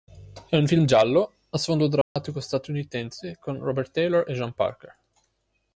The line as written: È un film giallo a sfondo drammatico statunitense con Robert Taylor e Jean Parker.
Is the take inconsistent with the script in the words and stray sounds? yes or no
yes